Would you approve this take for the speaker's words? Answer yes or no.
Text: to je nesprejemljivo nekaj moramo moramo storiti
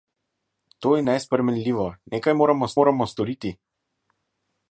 yes